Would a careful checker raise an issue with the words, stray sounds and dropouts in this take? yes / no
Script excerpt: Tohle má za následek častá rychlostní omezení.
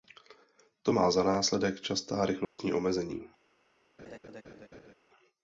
yes